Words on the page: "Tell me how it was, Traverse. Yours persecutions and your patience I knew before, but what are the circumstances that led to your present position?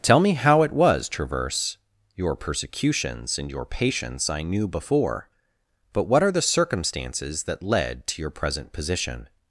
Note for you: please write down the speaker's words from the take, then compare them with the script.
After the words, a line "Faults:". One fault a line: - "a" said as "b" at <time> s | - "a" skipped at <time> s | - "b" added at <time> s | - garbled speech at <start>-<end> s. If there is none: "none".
"Tell me how it was, Traverse. Your persecutions and your patience I knew before, but what are the circumstances that led to your present position?
Faults:
- "Yours" said as "Your" at 2.1 s